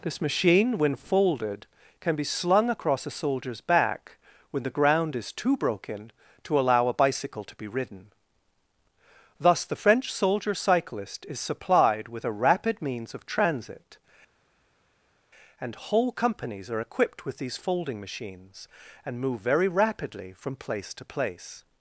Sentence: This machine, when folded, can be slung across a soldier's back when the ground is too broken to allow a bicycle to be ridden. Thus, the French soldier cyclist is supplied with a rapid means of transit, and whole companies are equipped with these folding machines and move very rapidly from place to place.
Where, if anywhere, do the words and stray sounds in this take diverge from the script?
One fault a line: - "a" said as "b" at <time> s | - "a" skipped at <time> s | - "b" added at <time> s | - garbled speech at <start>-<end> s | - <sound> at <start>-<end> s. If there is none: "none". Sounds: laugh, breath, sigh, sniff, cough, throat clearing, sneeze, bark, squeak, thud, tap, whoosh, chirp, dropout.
none